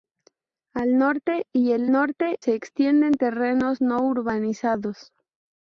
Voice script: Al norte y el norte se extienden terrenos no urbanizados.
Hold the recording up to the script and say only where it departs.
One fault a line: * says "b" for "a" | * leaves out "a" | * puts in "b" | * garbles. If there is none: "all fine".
all fine